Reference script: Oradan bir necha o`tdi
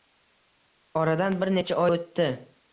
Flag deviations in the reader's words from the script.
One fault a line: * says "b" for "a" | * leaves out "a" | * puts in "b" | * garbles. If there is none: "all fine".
all fine